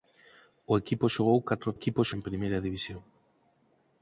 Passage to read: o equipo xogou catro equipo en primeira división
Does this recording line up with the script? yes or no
yes